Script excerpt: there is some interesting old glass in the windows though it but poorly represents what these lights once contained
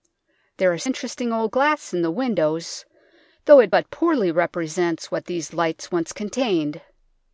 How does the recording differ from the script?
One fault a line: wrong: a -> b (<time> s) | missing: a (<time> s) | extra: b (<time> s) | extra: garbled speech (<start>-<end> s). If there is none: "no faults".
missing: some (0.8 s)